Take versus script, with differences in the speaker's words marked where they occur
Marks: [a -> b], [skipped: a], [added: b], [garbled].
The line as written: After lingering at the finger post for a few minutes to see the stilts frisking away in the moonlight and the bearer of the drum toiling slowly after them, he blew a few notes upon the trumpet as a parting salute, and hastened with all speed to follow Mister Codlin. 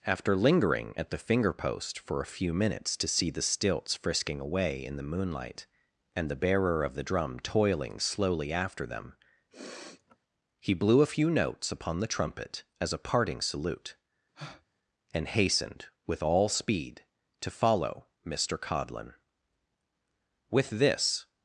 After lingering at the finger post for a few minutes to see the stilts frisking away in the moonlight and the bearer of the drum toiling slowly after them, he blew a few notes upon the trumpet as a parting salute, and hastened with all speed to follow Mister Codlin. [added: With this]